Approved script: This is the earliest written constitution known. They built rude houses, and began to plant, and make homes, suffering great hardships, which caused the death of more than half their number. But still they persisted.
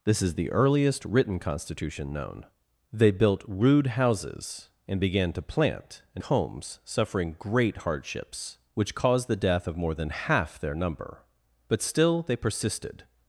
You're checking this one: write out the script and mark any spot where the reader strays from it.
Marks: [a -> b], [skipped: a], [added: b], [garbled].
This is the earliest written constitution known. They built rude houses, and began to plant, and [skipped: make] homes, suffering great hardships, which caused the death of more than half their number. But still they persisted.